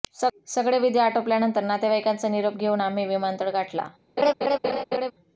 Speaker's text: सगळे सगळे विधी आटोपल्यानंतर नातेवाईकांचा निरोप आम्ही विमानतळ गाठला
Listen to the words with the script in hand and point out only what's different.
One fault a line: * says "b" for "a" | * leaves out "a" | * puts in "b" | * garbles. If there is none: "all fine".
* leaves out "सगळे"
* puts in "घेऊन"